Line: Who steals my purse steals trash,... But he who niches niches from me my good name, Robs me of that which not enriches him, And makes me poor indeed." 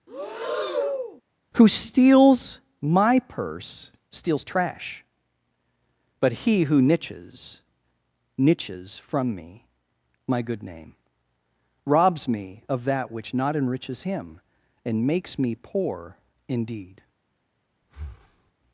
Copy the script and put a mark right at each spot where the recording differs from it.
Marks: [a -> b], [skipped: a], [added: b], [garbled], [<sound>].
[breath] Who steals my purse steals trash,... But he who niches niches from me my good name, Robs me of that which not enriches him, And makes me poor indeed." [breath]